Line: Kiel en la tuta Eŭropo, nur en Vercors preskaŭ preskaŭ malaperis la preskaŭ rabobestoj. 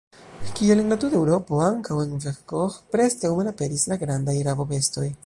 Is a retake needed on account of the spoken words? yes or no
yes